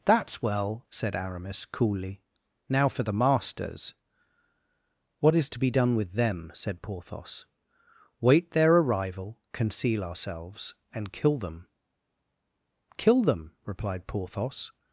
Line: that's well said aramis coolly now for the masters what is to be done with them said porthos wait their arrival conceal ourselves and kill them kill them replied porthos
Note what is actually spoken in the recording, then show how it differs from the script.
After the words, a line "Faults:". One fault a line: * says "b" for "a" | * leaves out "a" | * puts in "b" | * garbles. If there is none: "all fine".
that's well said aramis coolly now for the masters what is to be done with them said porthos wait their arrival conceal ourselves and kill them kill them replied porthos
Faults:
all fine